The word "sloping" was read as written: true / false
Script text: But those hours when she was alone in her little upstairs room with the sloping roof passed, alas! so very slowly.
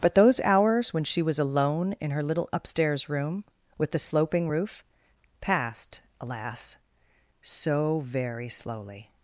true